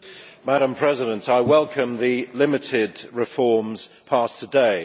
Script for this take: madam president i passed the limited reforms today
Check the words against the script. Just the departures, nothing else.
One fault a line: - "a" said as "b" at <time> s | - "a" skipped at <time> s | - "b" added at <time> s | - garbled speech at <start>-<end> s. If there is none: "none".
- "passed" said as "welcome" at 1.4 s
- "passed" added at 4.0 s